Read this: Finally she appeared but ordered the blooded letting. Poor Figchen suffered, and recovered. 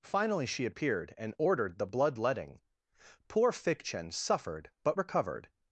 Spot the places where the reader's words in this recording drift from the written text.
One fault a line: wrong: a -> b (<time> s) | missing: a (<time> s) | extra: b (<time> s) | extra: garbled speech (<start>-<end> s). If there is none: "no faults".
wrong: but -> and (1.2 s)
wrong: blooded -> blood (1.9 s)
wrong: and -> but (4.8 s)